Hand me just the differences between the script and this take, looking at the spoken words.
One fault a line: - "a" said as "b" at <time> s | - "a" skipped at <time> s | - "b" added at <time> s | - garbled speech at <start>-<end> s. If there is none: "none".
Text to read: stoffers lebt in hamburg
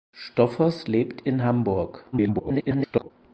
- garbled speech at 2.1-3.1 s